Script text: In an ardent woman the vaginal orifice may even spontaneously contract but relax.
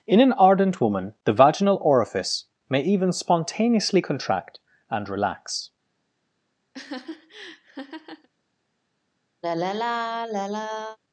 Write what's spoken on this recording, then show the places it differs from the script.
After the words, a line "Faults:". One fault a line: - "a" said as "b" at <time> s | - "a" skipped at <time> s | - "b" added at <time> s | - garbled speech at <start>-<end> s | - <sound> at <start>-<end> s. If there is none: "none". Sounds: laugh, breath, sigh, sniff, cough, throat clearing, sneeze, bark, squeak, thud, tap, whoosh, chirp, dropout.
In an ardent woman the vaginal orifice may even spontaneously contract and relax.
Faults:
- "but" said as "and" at 4.9 s
- laugh at 6.7-8.3 s
- sigh at 9.4-11.0 s